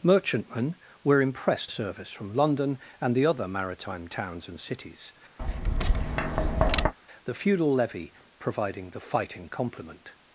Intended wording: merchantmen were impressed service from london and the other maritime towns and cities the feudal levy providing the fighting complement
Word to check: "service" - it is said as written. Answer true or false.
true